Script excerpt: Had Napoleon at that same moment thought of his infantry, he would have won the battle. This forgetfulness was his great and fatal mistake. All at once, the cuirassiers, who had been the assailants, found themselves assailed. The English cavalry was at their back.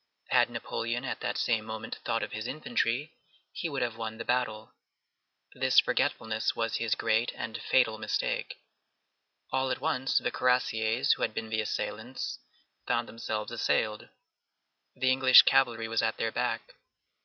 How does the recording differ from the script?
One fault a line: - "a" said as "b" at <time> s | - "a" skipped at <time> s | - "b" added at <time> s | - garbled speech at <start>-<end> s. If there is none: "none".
none